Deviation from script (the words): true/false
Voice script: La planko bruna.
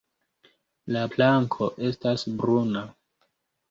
true